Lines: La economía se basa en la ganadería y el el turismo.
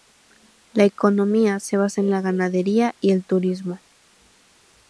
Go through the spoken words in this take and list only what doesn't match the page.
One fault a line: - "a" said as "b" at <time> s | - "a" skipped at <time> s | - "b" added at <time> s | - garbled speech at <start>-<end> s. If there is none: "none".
- "el" skipped at 3.2 s